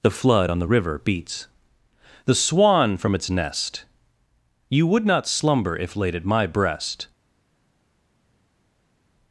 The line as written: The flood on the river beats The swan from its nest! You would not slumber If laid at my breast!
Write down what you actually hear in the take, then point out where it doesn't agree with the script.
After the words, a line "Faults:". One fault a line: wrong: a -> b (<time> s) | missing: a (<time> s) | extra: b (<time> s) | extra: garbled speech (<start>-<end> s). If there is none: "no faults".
The flood on the river beats The swan from its nest! You would not slumber If laid at my breast!
Faults:
no faults